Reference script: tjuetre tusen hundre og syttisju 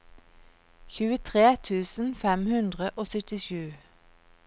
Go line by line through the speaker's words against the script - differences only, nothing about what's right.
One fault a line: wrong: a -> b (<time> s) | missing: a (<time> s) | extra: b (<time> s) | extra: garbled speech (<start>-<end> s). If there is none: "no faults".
extra: fem (2.2 s)